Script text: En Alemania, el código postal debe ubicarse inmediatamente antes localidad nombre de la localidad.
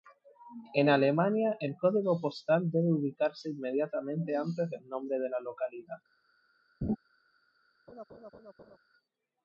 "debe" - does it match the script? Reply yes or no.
yes